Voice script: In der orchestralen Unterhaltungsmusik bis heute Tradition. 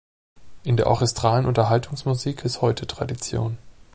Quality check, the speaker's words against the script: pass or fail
pass